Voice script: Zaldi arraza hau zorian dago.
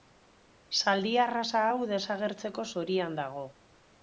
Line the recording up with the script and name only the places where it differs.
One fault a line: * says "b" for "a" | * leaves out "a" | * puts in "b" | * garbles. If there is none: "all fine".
* puts in "desagertzeko"